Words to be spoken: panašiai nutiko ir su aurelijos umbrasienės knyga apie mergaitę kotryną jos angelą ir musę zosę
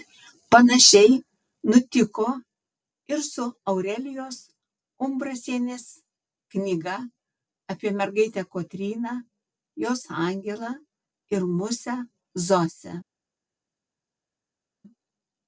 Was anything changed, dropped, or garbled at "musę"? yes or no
no